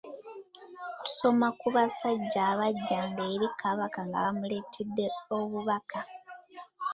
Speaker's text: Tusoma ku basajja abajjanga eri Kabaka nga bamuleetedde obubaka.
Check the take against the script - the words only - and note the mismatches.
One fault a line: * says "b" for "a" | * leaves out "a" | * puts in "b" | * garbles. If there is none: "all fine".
all fine